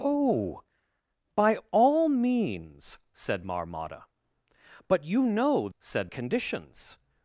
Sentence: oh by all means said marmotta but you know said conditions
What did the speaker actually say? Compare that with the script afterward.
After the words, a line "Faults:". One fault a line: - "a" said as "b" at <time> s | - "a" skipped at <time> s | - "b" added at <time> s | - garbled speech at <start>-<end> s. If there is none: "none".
oh by all means said marmotta but you know said conditions
Faults:
none